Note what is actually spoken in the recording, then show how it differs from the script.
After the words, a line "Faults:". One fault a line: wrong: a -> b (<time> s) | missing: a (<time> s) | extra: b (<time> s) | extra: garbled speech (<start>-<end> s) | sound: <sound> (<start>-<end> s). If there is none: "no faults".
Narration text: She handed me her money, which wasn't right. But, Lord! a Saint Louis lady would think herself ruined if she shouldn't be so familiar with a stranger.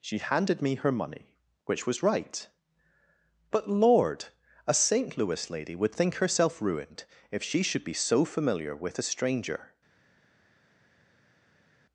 She handed me her money, which was right. But, Lord! a Saint Louis lady would think herself ruined if she should be so familiar with a stranger.
Faults:
wrong: wasn't -> was (1.9 s)
wrong: shouldn't -> should (7.6 s)